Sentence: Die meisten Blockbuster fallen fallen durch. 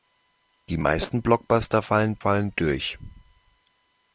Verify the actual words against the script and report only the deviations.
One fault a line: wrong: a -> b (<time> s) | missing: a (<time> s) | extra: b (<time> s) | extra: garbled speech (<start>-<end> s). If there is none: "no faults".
no faults